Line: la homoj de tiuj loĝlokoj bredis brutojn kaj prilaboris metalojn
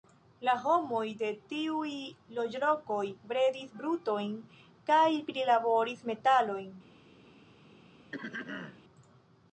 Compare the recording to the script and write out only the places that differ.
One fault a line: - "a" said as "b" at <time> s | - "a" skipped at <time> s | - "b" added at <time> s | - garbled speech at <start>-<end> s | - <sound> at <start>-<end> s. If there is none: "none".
- throat clearing at 8.1-8.8 s